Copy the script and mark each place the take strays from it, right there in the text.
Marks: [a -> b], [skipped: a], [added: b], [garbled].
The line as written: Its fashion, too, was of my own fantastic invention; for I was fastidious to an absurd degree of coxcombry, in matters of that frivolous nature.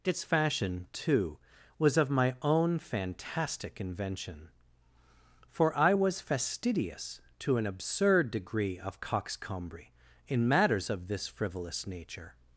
Its fashion, too, was of my own fantastic invention; for I was fastidious to an absurd degree of coxcombry, in matters of [that -> this] frivolous nature.